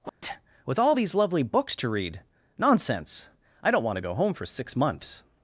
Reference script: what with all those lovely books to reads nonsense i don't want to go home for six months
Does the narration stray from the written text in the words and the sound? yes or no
yes